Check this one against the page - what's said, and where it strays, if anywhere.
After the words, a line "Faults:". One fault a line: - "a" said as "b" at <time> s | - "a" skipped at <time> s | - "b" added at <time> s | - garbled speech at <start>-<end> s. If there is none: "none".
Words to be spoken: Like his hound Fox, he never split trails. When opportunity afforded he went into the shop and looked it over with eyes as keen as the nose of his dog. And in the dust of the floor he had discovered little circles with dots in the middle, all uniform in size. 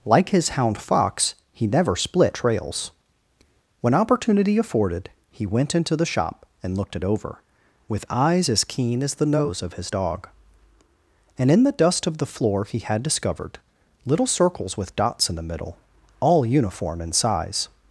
Like his hound Fox, he never split trails. When opportunity afforded he went into the shop and looked it over with eyes as keen as the nose of his dog. And in the dust of the floor he had discovered little circles with dots in the middle, all uniform in size.
Faults:
none